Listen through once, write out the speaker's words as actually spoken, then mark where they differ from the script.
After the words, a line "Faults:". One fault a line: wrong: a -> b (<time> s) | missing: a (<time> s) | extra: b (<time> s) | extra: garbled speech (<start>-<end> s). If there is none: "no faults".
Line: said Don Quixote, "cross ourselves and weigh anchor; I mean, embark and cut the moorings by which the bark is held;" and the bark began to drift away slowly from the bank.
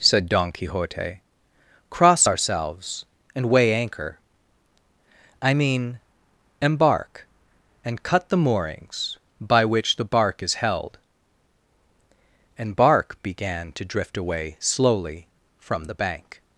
said Don Quixote, "cross ourselves and weigh anchor; I mean, embark and cut the moorings by which the bark is held;" and bark began to drift away slowly from the bank.
Faults:
missing: the (12.8 s)